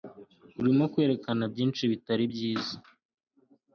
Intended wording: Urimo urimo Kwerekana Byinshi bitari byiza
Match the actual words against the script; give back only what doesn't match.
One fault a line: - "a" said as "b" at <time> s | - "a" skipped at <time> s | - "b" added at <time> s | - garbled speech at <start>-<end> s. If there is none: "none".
- "urimo" skipped at 0.8 s